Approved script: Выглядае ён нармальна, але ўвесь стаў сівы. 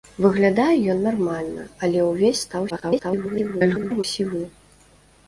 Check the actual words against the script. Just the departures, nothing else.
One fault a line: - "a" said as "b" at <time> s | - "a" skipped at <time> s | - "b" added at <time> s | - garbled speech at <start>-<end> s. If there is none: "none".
- garbled speech at 2.7-4.0 s